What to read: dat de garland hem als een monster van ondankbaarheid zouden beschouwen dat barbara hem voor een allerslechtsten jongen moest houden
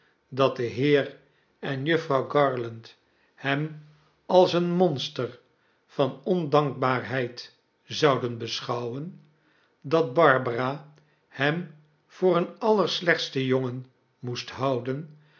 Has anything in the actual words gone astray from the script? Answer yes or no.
yes